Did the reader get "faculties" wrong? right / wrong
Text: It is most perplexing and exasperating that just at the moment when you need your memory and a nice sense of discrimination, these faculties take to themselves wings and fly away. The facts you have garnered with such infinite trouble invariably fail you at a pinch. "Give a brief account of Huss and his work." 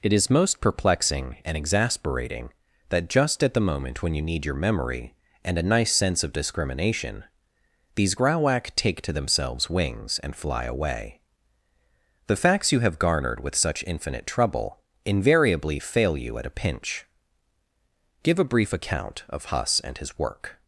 wrong